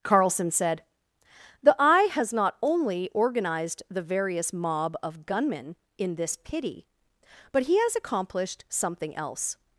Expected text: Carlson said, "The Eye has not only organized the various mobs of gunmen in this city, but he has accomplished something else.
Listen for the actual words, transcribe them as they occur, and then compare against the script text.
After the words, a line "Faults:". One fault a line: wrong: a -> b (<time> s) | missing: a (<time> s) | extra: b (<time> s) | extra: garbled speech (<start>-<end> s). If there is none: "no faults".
Carlson said, "The Eye has not only organized the various mob of gunmen in this pity, but he has accomplished something else.
Faults:
wrong: mobs -> mob (4.5 s)
wrong: city -> pity (6.4 s)